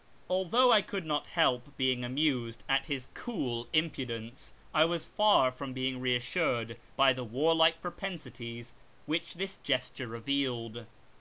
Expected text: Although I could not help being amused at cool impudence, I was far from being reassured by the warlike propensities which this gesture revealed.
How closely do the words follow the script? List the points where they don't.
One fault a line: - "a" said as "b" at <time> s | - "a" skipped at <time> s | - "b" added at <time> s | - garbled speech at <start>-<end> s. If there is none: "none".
- "his" added at 2.9 s